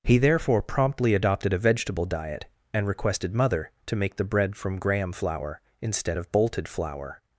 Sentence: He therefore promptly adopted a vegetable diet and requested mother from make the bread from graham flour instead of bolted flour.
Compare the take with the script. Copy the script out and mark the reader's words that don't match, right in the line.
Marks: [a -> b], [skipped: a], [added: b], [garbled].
He therefore promptly adopted a vegetable diet and requested mother [from -> to] make the bread from graham flour instead of bolted flour.